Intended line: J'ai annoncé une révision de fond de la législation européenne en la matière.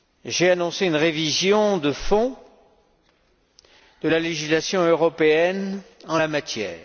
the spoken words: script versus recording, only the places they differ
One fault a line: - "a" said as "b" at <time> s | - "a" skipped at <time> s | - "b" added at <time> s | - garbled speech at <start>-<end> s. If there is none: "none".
none